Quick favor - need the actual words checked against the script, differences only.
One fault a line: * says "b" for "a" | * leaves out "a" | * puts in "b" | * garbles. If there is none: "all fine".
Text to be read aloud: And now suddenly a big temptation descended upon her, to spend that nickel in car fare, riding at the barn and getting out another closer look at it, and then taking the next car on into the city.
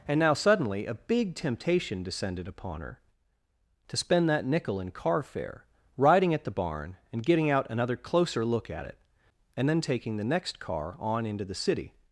all fine